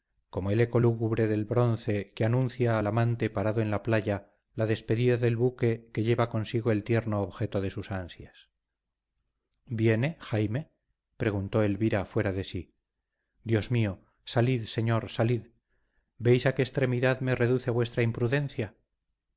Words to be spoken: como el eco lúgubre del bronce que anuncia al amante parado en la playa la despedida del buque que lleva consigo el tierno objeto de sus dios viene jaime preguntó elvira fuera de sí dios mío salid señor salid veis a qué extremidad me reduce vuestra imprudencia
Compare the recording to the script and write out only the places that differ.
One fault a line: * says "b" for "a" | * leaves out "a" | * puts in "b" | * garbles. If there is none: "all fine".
* says "ansias" for "dios"